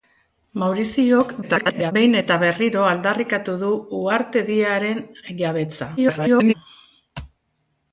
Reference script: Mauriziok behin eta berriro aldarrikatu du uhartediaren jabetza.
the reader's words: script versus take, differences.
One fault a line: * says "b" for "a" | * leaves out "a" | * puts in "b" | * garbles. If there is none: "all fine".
* garbles
* garbles